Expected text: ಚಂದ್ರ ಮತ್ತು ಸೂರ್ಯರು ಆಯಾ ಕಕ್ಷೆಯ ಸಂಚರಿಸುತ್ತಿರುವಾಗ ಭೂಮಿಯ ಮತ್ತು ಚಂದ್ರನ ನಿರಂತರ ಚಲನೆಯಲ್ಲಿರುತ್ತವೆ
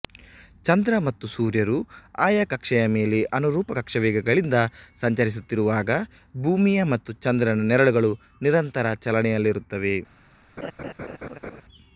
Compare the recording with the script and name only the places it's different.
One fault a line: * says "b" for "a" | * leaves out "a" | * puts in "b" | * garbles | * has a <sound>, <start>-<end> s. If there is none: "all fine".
* puts in "ಮೇಲೆ ಅನುರೂಪ ಕಕ್ಷಾವೇಗಗಳಿಂದ"
* puts in "ನೆರಳುಗಳು"
* has a laugh, 10.6-11.6 s